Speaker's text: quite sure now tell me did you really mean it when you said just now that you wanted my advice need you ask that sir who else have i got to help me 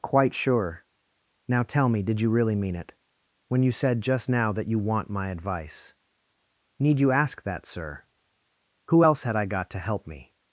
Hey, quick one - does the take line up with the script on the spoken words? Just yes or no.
no